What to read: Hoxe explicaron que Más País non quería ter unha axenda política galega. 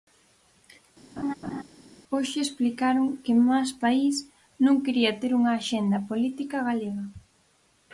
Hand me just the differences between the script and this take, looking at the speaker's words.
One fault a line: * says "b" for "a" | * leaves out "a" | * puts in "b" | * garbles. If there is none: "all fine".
all fine